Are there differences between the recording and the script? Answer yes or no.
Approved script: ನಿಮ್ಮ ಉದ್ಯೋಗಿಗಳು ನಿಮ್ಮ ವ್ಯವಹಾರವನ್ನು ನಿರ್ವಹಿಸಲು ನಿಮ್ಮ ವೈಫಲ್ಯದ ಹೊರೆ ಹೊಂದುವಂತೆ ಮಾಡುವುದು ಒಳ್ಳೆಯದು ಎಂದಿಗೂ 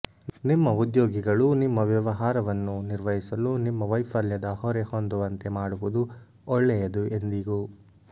no